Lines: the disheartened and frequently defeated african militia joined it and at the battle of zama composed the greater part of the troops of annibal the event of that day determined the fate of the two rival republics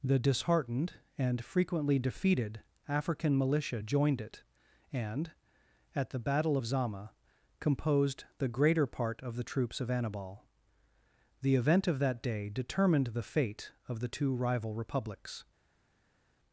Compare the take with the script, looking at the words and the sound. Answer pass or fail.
pass